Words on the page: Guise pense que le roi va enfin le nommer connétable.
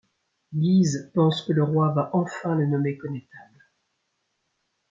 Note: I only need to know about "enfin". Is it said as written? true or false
true